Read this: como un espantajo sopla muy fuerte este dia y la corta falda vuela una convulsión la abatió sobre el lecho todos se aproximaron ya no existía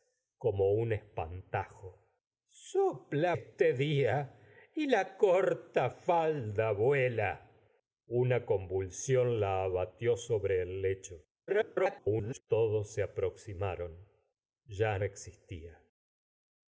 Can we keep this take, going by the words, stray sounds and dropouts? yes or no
no